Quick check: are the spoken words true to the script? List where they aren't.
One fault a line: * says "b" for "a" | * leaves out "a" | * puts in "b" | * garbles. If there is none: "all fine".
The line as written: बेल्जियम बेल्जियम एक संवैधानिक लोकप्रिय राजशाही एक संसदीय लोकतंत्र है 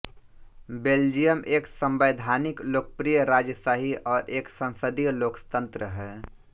* leaves out "बेल्जियम"
* puts in "और"